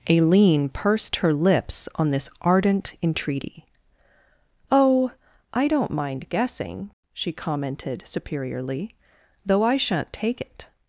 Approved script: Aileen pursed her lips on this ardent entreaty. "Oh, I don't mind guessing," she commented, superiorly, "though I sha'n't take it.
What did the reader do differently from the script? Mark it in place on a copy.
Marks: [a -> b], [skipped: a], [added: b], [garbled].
Aileen pursed her lips on this ardent entreaty. "Oh, I don't mind guessing," she commented, superiorly, "though I sha'n't take it.